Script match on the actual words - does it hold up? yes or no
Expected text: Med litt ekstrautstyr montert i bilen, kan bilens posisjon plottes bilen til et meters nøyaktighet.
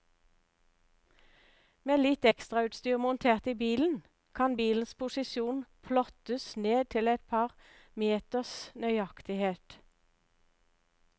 no